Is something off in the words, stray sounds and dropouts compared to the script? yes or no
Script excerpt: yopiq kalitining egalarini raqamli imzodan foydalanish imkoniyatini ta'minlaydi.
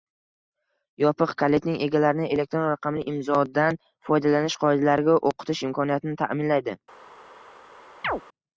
yes